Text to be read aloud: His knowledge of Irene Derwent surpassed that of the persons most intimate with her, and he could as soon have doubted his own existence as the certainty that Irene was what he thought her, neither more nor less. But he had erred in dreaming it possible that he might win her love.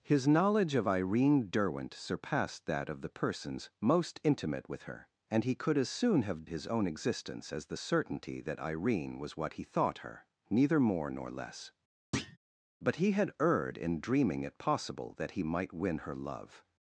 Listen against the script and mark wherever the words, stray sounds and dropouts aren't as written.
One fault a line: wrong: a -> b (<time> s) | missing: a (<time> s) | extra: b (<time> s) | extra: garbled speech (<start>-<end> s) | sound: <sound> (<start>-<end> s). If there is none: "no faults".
missing: doubted (6.5 s)
sound: thud (12.1-12.4 s)